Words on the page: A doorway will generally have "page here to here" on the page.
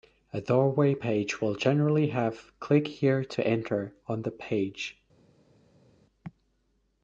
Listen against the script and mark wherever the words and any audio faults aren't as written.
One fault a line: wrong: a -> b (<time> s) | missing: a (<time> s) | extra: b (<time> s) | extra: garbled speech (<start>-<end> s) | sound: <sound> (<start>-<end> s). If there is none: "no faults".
extra: page (0.9 s)
wrong: page -> click (2.6 s)
wrong: here -> enter (3.4 s)